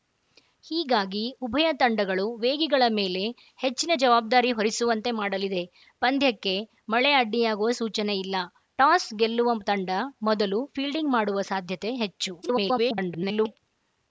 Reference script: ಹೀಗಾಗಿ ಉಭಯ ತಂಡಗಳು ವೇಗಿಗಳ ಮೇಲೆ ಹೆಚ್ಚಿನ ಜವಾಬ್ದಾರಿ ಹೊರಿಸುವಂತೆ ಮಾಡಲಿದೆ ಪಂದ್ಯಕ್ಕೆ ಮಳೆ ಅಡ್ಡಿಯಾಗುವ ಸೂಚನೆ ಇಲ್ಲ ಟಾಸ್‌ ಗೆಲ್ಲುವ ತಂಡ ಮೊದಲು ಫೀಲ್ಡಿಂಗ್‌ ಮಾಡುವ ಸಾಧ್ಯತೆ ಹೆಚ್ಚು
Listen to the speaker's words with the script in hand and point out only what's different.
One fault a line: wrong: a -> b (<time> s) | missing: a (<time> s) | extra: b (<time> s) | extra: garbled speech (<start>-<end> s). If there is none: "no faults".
extra: garbled speech (12.4-13.6 s)